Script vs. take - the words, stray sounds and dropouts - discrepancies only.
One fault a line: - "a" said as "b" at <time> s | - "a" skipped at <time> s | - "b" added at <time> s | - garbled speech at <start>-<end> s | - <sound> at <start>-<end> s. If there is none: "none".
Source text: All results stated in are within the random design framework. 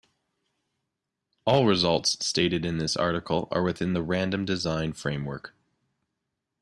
- "this article" added at 2.8 s